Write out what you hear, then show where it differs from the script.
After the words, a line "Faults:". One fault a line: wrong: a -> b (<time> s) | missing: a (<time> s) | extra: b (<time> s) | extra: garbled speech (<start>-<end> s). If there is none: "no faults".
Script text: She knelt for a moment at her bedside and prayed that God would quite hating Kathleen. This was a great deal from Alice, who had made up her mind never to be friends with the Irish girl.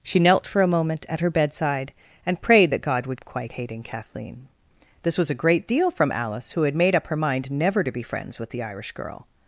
She knelt for a moment at her bedside and prayed that God would quite hating Kathleen. This was a great deal from Alice, who had made up her mind never to be friends with the Irish girl.
Faults:
no faults